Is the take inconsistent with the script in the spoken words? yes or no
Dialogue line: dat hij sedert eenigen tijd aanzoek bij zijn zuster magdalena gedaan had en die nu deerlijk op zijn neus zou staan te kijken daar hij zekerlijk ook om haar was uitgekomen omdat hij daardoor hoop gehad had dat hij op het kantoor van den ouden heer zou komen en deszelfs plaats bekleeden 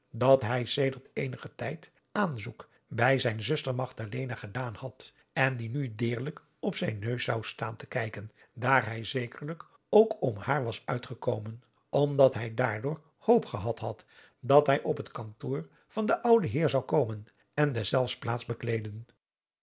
no